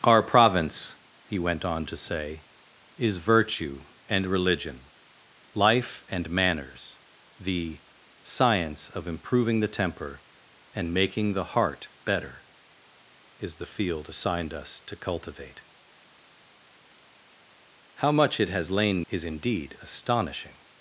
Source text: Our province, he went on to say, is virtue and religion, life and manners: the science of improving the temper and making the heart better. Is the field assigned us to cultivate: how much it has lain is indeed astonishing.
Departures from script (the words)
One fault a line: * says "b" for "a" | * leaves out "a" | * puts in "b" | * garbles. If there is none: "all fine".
all fine